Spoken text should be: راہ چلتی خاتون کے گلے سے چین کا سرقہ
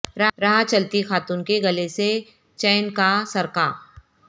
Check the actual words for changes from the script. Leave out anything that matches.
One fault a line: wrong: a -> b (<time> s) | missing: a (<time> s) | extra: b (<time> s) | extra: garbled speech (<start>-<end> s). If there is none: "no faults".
no faults